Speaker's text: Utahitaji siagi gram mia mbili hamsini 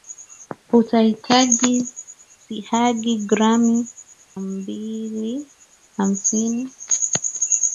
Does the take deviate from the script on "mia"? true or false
true